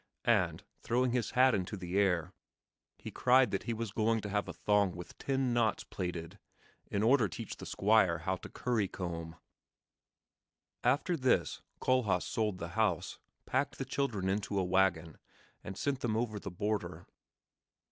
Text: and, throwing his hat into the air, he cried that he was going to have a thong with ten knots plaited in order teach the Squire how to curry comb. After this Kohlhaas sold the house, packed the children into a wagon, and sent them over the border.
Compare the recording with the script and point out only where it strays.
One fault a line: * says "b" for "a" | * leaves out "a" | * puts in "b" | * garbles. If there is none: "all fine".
all fine